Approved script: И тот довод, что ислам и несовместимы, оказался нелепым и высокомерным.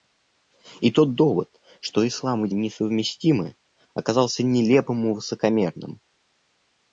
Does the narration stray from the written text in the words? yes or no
no